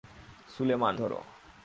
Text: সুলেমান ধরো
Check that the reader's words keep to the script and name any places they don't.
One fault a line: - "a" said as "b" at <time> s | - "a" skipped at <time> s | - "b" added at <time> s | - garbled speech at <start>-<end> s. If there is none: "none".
none